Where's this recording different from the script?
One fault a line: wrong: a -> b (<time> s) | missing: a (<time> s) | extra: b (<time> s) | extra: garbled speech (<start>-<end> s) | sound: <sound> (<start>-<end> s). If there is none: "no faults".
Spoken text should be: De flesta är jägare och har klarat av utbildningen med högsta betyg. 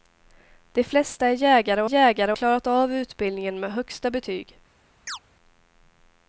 wrong: har -> jägare (1.8 s)
sound: chirp (5.1-5.2 s)